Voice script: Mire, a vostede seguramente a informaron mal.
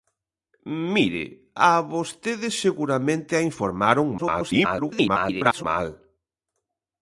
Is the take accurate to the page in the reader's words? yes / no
no